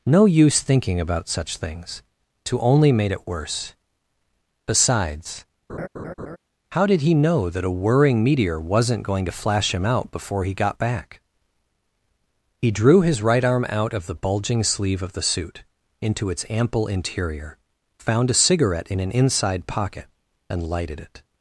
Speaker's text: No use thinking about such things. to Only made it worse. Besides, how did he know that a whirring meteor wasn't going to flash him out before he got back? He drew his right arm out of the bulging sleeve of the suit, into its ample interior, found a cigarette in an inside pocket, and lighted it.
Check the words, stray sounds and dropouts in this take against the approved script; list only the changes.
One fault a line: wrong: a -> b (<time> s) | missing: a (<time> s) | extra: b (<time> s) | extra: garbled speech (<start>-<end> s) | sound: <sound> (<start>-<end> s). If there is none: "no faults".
sound: laugh (5.7-6.4 s)